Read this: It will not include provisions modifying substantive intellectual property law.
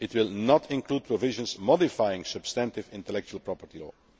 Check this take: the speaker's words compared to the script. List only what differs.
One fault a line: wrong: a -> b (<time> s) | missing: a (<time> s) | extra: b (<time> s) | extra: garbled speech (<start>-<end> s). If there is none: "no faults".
no faults